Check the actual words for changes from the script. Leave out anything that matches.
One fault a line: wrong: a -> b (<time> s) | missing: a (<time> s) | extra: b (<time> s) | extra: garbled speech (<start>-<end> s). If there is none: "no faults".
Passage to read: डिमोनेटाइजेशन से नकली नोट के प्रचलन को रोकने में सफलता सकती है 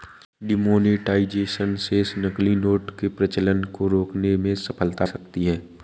no faults